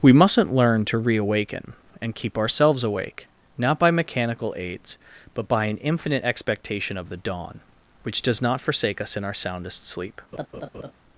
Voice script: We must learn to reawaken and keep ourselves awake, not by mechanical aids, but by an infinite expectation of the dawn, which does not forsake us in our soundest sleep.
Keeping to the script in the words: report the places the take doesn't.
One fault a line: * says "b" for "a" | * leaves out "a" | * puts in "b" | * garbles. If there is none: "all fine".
* says "mustn't" for "must"